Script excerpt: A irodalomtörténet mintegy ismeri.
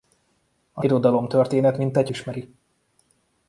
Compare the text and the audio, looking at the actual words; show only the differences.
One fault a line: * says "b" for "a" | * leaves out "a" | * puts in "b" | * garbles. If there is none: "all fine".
all fine